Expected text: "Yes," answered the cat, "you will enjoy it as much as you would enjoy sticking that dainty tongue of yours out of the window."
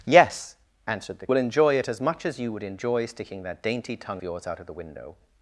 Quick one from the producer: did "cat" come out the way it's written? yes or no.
no